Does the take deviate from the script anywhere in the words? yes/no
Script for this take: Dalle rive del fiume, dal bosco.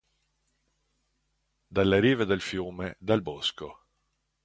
no